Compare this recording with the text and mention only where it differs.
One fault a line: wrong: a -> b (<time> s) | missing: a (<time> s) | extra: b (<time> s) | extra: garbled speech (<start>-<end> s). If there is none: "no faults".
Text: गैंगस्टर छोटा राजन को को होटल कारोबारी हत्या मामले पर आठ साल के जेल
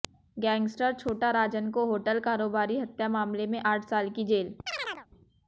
missing: को (1.9 s)
wrong: पर -> में (3.5 s)
wrong: के -> की (4.1 s)